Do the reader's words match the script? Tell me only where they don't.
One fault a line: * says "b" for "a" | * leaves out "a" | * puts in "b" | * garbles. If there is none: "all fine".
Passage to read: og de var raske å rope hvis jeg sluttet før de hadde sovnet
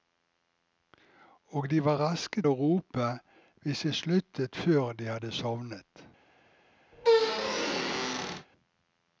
all fine